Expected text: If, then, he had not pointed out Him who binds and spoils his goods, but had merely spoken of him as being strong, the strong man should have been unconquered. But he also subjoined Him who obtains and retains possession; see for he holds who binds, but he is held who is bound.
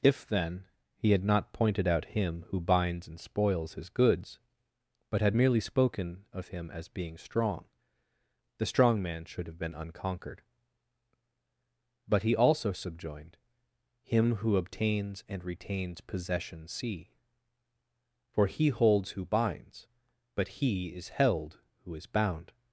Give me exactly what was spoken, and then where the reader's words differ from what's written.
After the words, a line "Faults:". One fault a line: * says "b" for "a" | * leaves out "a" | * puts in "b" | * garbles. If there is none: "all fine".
If, then, he had not pointed out Him who binds and spoils his goods, but had merely spoken of him as being strong, the strong man should have been unconquered. But he also subjoined Him who obtains and retains possession; see for he holds who binds, but he is held who is bound.
Faults:
all fine